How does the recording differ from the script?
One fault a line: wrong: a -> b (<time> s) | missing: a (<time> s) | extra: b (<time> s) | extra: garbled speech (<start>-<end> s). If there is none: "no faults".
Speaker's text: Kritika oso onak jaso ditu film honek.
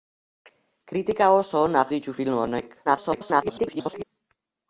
missing: jaso (1.9 s)
extra: garbled speech (2.8-4.0 s)